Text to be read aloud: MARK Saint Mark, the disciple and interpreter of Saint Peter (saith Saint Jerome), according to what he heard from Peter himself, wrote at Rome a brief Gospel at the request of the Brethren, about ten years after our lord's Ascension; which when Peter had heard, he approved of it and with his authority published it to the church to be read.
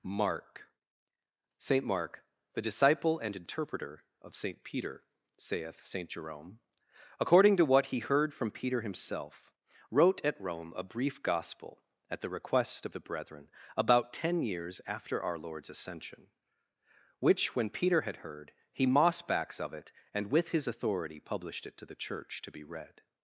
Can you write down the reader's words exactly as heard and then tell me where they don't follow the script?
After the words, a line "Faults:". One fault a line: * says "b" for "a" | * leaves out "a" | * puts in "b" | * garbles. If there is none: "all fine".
MARK Saint Mark, the disciple and interpreter of Saint Peter (saith Saint Jerome), according to what he heard from Peter himself, wrote at Rome a brief Gospel at the request of the Brethren, about ten years after our lord's Ascension; which when Peter had heard, he mossbacks of it and with his authority published it to the church to be read.
Faults:
* says "mossbacks" for "approved"